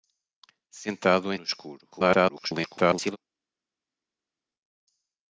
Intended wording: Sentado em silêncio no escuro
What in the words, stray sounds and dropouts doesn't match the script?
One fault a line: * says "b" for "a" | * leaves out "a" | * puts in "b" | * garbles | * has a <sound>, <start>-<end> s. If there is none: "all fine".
* leaves out "silêncio"
* garbles